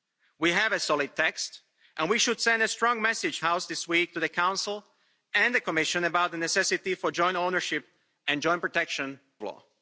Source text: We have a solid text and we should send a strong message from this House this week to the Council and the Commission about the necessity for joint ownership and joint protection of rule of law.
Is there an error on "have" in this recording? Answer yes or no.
no